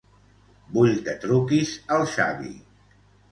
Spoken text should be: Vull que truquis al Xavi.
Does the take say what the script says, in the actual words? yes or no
yes